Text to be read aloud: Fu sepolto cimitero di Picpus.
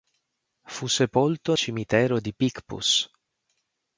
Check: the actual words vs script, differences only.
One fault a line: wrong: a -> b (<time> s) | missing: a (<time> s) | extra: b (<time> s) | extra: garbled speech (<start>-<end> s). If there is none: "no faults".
no faults